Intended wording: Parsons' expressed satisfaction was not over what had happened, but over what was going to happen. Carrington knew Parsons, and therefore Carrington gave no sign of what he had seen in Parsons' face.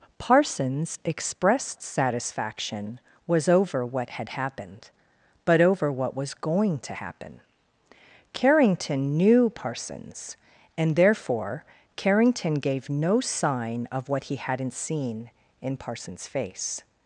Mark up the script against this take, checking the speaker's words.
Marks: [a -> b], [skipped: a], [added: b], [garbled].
Parsons' expressed satisfaction was [skipped: not] over what had happened, but over what was going to happen. Carrington knew Parsons, and therefore Carrington gave no sign of what he [had -> hadn't] seen in Parsons' face.